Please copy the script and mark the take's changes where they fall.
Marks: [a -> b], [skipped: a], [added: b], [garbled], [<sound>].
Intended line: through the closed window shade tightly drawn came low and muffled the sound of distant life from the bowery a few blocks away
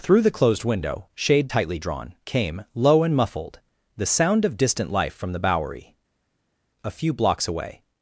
through the closed window shade tightly drawn came low and muffled the sound of distant life from the bowery a few blocks away